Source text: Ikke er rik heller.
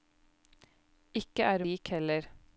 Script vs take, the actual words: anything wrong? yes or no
no